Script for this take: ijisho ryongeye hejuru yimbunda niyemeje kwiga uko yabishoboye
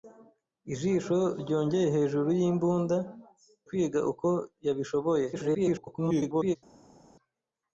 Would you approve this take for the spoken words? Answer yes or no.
no